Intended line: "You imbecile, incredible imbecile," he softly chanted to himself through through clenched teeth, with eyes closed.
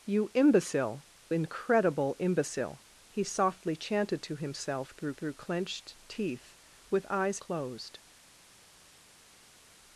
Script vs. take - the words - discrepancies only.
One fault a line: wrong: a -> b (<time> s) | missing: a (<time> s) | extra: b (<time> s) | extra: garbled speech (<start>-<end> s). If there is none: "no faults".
no faults